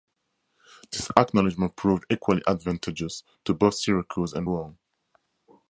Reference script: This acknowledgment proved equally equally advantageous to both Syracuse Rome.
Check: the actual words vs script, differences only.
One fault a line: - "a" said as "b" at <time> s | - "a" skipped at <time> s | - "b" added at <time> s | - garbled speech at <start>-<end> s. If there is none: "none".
- "equally" skipped at 2.4 s
- "and" added at 4.3 s